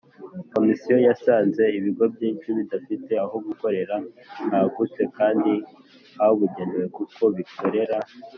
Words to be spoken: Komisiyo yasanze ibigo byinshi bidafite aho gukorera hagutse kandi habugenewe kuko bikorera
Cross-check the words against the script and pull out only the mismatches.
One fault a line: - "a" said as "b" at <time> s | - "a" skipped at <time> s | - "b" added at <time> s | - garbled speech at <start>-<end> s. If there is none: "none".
none